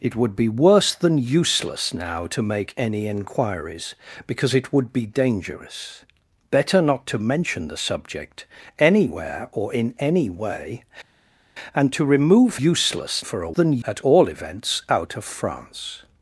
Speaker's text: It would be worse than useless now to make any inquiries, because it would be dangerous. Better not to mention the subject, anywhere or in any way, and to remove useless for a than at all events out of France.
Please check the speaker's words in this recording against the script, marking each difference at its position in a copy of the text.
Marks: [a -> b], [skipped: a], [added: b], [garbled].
It would be worse than useless now to make any inquiries, because it would be dangerous. Better not to mention the subject, anywhere or in any way, and to remove useless for a than at all events out of France.